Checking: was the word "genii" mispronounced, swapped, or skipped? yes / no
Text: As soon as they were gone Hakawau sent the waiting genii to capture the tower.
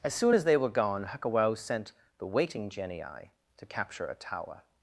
no